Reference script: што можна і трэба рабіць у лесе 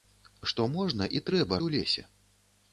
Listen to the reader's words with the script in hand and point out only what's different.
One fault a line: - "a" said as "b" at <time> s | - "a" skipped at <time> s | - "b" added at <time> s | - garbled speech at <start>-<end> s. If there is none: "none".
- "рабіць" skipped at 1.6 s